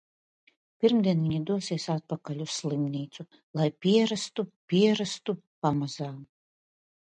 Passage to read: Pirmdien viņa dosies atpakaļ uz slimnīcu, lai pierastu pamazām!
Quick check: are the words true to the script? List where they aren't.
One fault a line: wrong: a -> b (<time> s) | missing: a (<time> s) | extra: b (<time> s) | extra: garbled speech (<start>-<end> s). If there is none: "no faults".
extra: pierastu (4.7 s)